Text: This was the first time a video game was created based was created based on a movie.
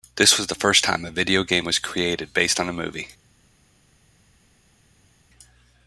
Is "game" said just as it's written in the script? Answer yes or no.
yes